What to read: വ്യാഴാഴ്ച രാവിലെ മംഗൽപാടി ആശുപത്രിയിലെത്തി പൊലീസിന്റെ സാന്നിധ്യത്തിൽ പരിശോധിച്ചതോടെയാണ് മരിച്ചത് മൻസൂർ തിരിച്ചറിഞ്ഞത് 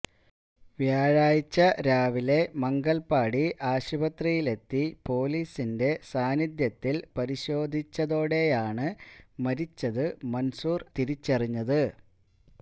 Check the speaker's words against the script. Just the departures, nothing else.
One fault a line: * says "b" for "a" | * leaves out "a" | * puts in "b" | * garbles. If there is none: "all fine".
all fine